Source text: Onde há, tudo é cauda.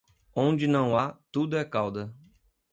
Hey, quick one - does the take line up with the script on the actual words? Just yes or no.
no